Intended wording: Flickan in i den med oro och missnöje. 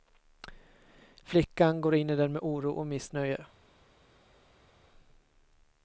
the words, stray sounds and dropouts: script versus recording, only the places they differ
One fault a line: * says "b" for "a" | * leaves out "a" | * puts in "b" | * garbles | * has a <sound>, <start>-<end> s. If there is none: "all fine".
* puts in "går"